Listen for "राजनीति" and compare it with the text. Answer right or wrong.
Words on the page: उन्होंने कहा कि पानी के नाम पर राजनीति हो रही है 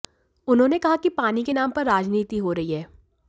right